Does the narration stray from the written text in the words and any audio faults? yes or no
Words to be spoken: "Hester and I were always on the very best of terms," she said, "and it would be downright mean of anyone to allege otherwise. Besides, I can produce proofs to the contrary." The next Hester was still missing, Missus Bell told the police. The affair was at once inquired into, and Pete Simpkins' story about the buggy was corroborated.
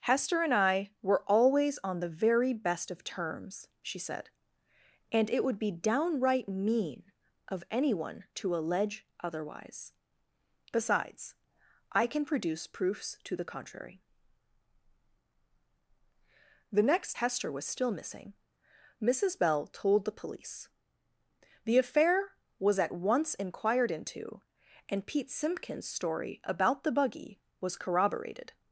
no